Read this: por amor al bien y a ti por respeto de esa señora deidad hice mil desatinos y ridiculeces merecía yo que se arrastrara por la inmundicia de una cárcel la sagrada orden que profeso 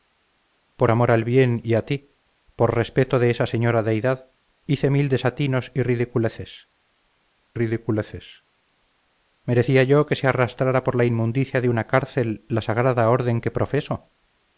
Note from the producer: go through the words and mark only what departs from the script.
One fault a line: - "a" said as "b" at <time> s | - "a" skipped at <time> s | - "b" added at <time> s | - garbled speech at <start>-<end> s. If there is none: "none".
- "ridiculeces" added at 7.5 s